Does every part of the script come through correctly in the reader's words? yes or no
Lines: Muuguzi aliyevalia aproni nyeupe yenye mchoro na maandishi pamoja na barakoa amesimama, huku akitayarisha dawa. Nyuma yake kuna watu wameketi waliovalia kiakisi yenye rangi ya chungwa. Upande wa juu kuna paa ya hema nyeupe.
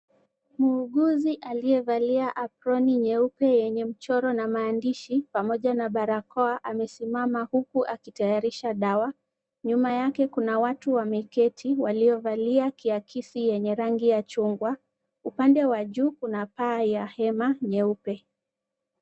yes